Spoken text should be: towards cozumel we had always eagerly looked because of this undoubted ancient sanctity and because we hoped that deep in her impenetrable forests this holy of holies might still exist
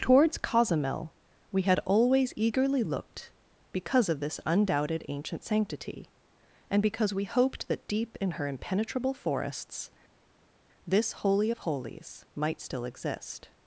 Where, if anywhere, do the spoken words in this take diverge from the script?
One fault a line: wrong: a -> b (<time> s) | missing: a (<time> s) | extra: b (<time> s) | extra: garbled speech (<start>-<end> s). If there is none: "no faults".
no faults